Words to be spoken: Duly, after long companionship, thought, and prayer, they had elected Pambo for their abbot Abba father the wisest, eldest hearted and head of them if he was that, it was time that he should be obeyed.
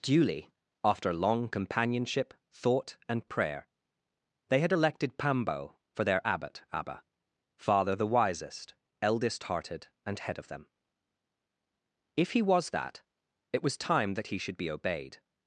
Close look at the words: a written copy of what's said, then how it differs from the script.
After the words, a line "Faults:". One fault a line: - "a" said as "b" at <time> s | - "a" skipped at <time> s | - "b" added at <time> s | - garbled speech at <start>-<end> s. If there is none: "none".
Duly, after long companionship, thought, and prayer, they had elected Pambo for their abbot Abba father the wisest, eldest hearted and head of them if he was that, it was time that he should be obeyed.
Faults:
none